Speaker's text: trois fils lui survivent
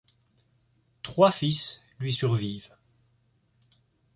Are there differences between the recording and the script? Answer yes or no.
no